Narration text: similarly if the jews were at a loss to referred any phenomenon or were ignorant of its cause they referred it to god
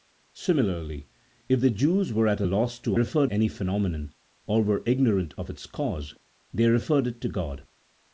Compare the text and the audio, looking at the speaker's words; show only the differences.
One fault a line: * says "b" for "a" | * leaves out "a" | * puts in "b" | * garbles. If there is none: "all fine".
all fine